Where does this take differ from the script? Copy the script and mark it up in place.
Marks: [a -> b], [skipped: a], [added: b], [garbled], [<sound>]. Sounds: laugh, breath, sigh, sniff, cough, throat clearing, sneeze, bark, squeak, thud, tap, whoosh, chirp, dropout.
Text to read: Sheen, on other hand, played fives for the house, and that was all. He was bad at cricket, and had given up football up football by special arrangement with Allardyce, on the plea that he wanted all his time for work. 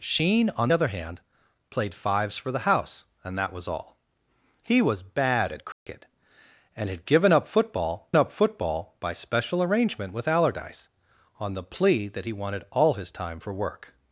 Sheen, on other hand, played fives for the house, and that was all. He was bad at cricket, [dropout] and had given up football up football by special arrangement with Allardyce, on the plea that he wanted all his time for work.